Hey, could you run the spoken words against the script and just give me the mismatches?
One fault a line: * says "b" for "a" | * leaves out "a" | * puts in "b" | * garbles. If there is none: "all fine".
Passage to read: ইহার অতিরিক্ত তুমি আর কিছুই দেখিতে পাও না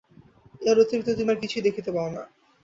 all fine